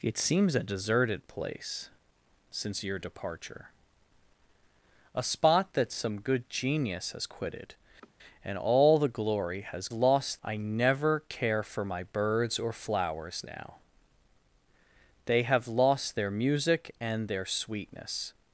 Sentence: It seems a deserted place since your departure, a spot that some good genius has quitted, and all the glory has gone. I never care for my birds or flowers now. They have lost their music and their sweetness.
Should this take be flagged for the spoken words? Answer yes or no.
yes